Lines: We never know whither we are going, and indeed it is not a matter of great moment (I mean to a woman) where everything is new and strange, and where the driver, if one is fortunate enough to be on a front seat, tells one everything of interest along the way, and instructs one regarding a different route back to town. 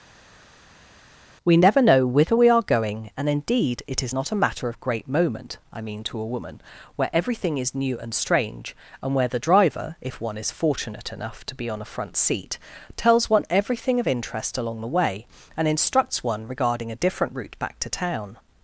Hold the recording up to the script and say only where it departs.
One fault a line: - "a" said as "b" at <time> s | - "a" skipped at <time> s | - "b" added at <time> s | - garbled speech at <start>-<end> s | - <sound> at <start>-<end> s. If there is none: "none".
none